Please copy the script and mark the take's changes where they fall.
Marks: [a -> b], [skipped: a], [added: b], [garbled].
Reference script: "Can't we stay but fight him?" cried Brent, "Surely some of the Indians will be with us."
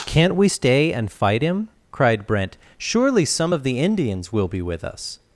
"Can't we stay [but -> and] fight him?" cried Brent, "Surely some of the Indians will be with us."